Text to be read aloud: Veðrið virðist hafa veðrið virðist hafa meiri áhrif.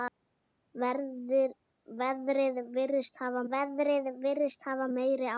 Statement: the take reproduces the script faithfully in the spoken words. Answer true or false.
true